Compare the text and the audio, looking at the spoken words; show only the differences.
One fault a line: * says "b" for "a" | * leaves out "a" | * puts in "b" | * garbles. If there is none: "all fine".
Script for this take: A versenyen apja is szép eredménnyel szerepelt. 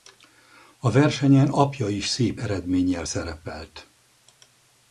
all fine